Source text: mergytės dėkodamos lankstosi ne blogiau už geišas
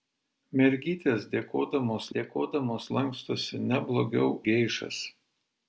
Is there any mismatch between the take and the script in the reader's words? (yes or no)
yes